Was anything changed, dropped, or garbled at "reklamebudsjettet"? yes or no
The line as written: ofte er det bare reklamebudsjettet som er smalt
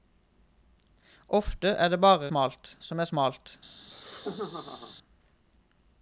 yes